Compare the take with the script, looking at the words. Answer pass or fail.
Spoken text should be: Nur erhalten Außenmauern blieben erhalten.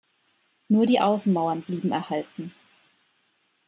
fail